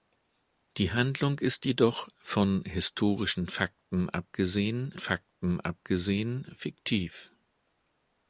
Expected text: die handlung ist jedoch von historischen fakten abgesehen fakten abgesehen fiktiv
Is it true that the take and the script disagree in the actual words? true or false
false